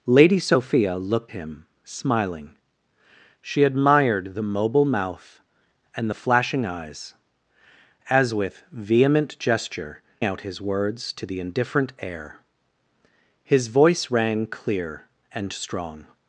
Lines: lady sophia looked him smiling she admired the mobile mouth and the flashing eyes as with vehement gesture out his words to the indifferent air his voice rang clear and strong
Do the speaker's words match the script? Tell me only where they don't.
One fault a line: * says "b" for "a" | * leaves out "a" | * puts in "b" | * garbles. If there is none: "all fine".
all fine